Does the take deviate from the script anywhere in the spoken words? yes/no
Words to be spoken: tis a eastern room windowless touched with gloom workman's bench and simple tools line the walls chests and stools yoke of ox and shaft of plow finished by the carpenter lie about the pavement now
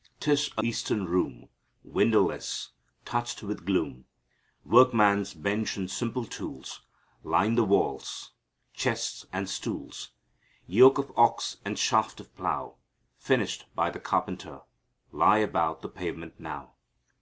no